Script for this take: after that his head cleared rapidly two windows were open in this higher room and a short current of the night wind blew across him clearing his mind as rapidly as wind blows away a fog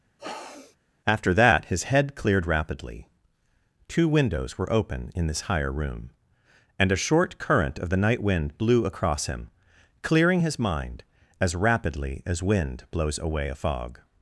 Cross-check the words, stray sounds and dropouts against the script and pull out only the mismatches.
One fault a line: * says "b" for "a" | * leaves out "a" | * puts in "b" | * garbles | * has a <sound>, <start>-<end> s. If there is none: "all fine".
* has a sniff, 0.2-0.8 s